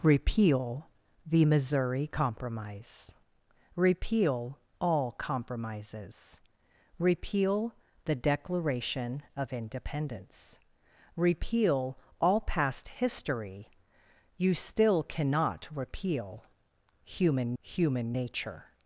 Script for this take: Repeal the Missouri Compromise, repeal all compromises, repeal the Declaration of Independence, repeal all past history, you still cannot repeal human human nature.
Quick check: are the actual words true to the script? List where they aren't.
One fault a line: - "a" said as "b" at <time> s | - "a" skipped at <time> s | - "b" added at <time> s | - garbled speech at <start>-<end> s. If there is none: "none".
none